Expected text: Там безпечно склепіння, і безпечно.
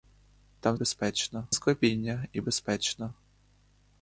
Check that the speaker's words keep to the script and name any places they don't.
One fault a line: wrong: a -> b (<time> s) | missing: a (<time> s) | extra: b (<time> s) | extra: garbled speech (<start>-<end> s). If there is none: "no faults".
no faults